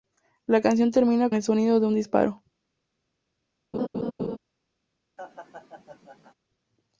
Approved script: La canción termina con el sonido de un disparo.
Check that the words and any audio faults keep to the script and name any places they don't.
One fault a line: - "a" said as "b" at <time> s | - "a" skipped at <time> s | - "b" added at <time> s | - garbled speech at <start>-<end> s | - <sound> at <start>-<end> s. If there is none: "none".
- "con" skipped at 1.3 s
- laugh at 3.7-4.4 s
- laugh at 5.2-6.3 s